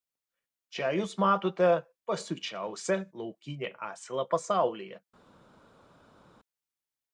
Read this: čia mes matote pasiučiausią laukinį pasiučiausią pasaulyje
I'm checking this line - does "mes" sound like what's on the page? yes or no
no